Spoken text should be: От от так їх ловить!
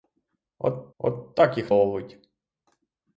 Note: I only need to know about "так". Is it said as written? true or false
true